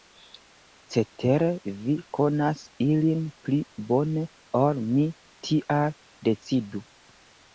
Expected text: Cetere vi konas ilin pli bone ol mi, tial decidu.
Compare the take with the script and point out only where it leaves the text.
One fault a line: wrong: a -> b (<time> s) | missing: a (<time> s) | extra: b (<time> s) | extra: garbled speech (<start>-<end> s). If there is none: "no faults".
no faults